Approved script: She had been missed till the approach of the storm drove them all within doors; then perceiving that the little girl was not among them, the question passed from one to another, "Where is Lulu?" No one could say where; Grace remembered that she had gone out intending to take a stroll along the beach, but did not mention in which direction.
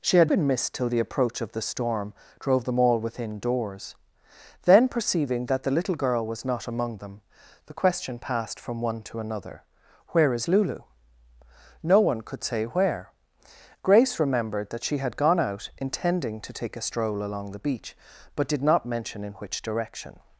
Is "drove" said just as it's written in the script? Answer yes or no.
yes